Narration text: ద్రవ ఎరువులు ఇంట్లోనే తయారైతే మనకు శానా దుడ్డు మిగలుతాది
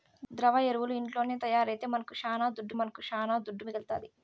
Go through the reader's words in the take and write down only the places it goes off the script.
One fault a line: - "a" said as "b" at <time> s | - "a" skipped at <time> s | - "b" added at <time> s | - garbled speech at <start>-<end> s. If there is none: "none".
- "మనకు శానా దుడ్డు" added at 2.8 s